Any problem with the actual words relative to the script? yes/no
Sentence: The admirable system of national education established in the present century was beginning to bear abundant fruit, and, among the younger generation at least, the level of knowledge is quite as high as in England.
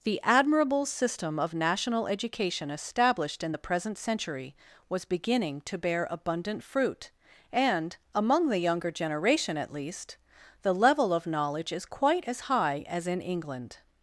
no